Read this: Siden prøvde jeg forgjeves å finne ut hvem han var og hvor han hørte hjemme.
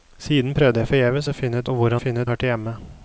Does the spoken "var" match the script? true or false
false